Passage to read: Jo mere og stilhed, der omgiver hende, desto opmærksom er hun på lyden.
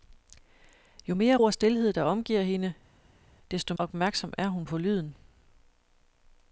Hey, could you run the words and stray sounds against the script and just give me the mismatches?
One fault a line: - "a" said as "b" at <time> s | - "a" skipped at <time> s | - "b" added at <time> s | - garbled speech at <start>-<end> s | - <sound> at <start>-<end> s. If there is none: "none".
none